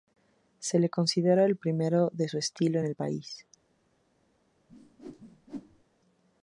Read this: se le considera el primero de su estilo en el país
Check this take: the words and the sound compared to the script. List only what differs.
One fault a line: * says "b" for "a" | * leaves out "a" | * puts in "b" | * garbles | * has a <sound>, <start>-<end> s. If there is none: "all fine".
* has a whoosh, 4.7-5.8 s